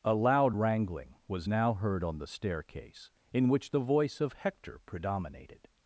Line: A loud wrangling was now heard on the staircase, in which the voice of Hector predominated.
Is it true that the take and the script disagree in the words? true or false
false